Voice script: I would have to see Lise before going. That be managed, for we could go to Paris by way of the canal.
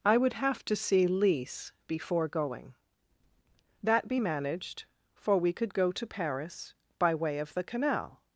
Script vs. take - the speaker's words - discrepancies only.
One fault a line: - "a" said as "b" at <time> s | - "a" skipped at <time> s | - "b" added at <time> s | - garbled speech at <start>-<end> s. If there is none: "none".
none